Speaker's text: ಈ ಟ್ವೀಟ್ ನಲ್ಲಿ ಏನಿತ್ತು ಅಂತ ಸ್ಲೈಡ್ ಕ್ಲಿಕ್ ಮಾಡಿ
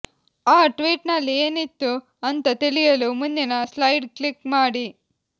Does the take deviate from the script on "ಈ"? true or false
true